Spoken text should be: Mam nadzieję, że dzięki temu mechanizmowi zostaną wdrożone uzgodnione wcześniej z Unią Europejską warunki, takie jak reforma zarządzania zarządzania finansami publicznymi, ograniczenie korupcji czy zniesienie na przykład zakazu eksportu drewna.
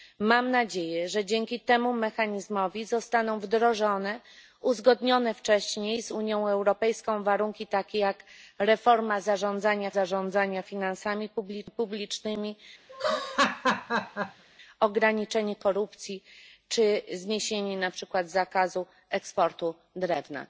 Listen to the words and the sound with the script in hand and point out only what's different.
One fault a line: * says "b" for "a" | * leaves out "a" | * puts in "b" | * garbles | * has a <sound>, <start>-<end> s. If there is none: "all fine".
* has a laugh, 12.9-14.4 s